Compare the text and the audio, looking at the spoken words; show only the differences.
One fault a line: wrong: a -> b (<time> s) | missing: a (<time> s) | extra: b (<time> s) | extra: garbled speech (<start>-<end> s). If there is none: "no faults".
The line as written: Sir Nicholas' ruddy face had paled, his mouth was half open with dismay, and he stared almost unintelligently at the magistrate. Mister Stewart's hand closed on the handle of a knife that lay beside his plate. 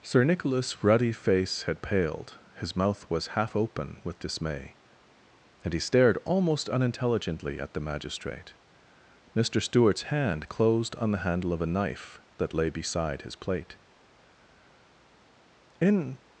extra: In (15.8 s)